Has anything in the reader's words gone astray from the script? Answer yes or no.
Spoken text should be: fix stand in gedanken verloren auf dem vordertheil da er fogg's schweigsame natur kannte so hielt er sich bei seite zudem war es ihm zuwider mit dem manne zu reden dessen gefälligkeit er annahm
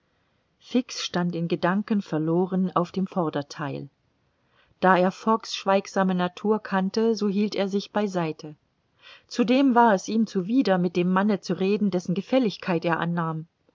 no